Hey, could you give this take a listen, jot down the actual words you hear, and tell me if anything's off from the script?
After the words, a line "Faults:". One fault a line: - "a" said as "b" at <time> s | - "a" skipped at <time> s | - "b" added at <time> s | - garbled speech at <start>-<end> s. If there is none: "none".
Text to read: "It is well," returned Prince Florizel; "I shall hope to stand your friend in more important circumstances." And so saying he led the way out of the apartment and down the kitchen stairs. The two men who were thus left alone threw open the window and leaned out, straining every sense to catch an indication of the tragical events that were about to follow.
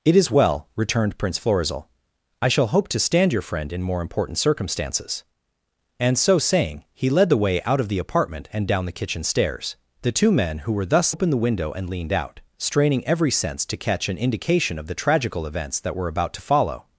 "It is well," returned Prince Florizel; "I shall hope to stand your friend in more important circumstances." And so saying he led the way out of the apartment and down the kitchen stairs. The two men who were thus open the window and leaned out, straining every sense to catch an indication of the tragical events that were about to follow.
Faults:
- "left alone threw" skipped at 11.2 s